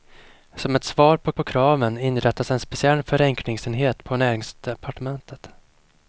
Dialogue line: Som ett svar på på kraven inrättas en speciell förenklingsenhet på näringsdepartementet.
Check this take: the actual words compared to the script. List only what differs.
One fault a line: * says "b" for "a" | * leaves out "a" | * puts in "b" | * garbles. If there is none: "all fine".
all fine